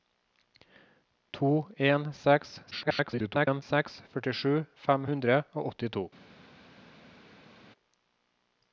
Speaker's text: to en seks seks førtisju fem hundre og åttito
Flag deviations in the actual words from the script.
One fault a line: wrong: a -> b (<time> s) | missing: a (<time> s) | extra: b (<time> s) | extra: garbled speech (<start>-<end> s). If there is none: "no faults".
extra: garbled speech (2.7-3.6 s)